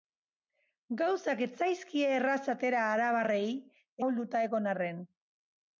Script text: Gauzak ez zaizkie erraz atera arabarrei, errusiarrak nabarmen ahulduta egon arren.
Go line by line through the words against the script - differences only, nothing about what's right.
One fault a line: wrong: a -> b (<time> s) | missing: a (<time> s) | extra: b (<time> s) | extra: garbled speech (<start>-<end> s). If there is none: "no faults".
missing: errusiarrak nabarmen (3.5 s)